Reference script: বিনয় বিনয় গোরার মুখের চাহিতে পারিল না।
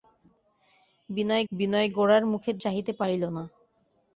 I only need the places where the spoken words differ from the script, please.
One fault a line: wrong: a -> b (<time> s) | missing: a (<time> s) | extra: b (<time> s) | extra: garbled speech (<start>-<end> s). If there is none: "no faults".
no faults